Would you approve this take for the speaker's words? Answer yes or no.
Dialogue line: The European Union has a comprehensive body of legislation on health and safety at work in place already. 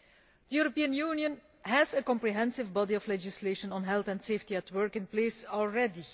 yes